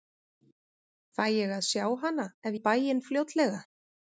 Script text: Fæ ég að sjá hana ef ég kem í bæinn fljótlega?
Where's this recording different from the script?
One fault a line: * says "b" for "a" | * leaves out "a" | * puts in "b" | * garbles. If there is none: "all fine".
* leaves out "ég kem"